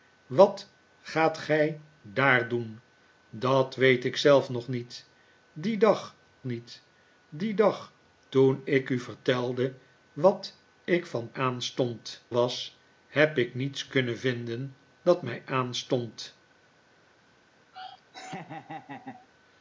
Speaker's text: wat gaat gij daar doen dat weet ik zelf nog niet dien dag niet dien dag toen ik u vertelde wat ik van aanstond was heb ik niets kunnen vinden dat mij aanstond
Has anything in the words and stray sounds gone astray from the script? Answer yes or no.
yes